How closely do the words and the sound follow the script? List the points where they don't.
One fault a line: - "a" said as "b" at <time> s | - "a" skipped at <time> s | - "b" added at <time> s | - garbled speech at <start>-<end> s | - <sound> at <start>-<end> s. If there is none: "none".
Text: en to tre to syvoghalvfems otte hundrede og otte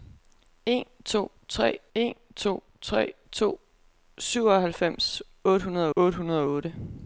- "en" added at 1.9 s
- "tre to" added at 2.8 s
- "otte hundrede" added at 5.9 s